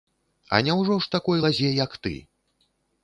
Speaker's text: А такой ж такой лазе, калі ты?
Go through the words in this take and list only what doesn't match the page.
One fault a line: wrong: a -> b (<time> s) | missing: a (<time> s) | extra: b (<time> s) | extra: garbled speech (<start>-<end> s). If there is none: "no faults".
wrong: такой -> няўжо (0.7 s)
wrong: калі -> як (1.8 s)